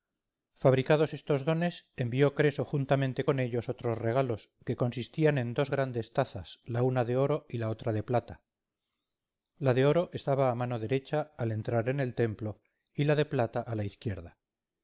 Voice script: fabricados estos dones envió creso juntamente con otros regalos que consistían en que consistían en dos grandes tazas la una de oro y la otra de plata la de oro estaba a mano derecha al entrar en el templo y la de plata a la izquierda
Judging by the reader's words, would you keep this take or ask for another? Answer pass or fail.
fail